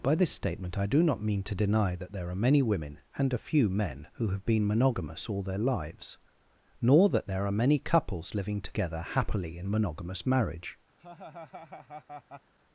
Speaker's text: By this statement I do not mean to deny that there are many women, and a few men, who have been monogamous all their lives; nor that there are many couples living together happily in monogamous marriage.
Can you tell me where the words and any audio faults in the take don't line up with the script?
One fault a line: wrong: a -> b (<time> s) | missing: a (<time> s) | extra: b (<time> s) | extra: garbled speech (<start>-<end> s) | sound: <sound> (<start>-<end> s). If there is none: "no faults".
sound: laugh (11.0-12.5 s)